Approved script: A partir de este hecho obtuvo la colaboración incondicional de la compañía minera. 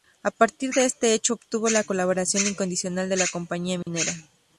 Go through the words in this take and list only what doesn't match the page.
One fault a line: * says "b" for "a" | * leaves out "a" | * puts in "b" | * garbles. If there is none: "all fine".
all fine